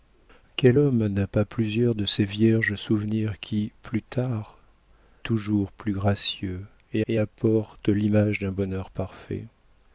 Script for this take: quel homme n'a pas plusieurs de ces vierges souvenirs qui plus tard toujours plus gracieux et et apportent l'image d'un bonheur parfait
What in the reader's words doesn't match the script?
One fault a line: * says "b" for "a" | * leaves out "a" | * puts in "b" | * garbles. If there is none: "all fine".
all fine